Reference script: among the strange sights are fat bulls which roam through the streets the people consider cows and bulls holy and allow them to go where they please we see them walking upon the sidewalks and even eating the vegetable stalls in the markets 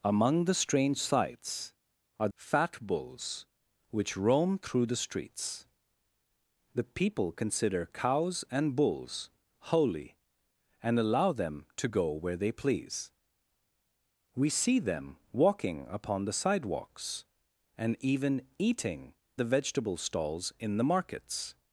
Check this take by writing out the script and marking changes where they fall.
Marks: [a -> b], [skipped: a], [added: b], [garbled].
among the strange sights are fat bulls which roam through the streets the people consider cows and bulls holy and allow them to go where they please we see them walking upon the sidewalks and even eating the vegetable stalls in the markets